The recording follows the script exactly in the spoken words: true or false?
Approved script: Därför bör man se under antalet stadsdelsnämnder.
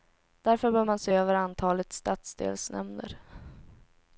false